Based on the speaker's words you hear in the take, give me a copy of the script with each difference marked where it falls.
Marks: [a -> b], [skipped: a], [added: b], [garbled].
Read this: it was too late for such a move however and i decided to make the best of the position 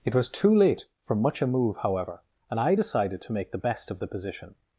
it was too late for [such -> much] a move however and i decided to make the best of the position